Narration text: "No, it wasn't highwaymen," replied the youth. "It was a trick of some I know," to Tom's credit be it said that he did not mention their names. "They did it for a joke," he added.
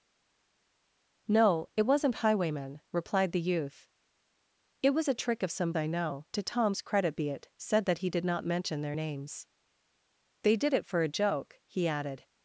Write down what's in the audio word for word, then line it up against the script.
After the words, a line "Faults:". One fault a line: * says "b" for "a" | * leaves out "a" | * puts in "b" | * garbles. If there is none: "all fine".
"No, it wasn't highwaymen," replied the youth. "It was a trick of some I know," to Tom's credit be it said that he did not mention their names. "They did it for a joke," he added.
Faults:
all fine